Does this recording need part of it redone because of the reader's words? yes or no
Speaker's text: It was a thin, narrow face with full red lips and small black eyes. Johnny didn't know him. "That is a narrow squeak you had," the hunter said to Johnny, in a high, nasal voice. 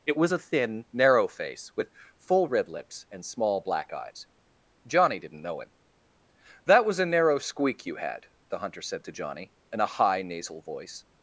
yes